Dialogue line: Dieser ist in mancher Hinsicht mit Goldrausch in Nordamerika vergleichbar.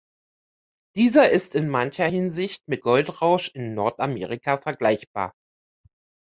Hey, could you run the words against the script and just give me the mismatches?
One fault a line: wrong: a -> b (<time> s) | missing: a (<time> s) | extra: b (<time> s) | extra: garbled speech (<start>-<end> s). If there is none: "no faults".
no faults